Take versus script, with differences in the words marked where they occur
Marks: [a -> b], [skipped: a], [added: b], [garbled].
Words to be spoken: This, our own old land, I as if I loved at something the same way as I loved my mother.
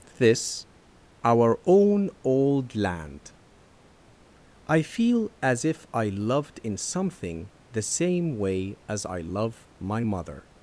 This, our own old land, I [added: feel] as if I loved [at -> in] something the same way as I [loved -> love] my mother.